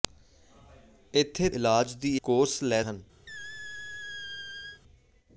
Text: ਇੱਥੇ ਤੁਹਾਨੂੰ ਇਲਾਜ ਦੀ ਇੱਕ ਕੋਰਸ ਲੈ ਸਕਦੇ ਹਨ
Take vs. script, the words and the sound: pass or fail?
fail